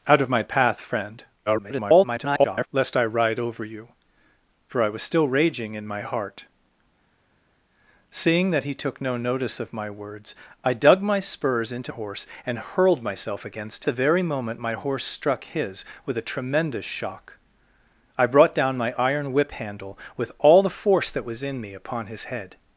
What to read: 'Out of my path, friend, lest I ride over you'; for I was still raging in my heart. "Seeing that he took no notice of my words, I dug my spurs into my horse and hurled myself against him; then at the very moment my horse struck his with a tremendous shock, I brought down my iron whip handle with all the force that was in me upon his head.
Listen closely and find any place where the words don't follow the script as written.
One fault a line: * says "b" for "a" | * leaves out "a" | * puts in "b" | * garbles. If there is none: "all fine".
* garbles
* leaves out "my"
* leaves out "him then at"